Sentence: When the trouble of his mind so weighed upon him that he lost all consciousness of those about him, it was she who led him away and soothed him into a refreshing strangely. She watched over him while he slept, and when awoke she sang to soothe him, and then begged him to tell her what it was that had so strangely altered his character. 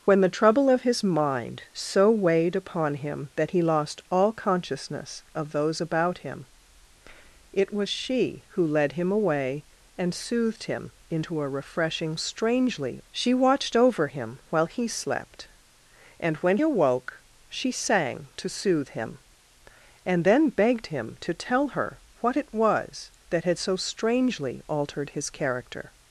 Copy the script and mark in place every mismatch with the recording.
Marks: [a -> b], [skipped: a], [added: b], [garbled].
When the trouble of his mind so weighed upon him that he lost all consciousness of those about him, it was she who led him away and soothed him into a refreshing strangely. She watched over him while he slept, and when awoke she sang to soothe him, and then begged him to tell her what it was that had so strangely altered his character.